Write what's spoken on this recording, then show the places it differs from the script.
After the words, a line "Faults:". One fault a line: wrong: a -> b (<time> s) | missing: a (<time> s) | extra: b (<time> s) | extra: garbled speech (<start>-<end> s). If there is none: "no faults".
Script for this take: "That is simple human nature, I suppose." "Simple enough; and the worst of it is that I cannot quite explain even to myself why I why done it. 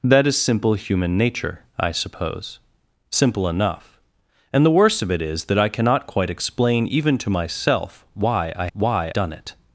"That is simple human nature, I suppose." "Simple enough; and the worst of it is that I cannot quite explain even to myself why I why done it.
Faults:
no faults